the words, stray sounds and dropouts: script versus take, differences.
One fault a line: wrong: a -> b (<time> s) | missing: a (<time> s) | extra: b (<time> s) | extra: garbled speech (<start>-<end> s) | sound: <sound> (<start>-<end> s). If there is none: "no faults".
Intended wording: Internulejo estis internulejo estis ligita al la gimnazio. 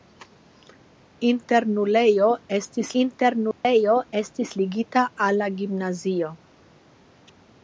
sound: dropout (3.5-3.6 s)